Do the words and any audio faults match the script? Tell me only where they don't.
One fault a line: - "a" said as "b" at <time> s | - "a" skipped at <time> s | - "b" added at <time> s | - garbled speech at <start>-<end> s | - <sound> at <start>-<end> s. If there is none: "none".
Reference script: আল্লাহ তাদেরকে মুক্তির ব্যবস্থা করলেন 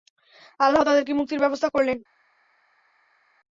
none